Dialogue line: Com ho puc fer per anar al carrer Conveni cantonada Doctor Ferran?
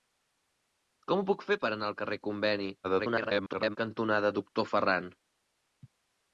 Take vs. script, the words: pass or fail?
fail